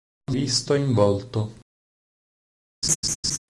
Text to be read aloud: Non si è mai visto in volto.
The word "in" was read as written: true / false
true